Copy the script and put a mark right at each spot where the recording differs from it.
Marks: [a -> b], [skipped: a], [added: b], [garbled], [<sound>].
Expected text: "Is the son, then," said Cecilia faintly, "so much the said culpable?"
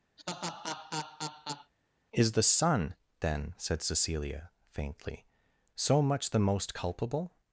[laugh] "Is the son, then," said Cecilia faintly, "so much the [said -> most] culpable?"